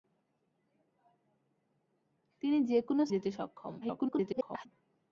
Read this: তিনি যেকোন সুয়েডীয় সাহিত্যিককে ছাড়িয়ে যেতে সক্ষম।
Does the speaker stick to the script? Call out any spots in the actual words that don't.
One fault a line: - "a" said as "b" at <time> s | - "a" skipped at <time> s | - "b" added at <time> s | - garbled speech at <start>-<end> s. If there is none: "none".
- "সুয়েডীয় সাহিত্যিককে ছাড়িয়ে" skipped at 3.0 s
- garbled speech at 3.8-4.7 s